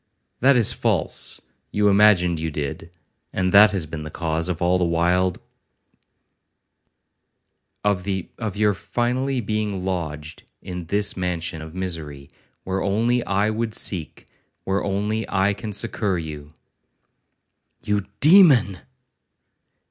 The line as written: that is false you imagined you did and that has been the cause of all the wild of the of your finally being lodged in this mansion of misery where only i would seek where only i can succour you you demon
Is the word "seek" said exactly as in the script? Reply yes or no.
yes